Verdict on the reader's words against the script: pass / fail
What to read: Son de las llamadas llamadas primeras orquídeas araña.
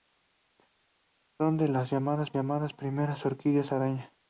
pass